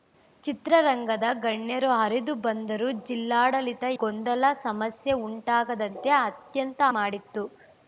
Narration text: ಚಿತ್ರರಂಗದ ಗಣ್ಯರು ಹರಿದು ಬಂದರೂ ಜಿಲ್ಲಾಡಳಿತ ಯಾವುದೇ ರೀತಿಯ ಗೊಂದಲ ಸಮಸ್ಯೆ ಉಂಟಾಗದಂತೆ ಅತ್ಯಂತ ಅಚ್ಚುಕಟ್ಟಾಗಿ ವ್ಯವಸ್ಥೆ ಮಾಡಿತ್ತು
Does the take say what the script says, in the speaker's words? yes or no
no